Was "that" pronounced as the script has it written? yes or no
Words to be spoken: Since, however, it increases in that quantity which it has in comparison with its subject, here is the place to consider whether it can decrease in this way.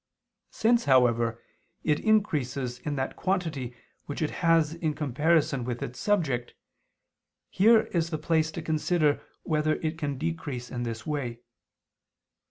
yes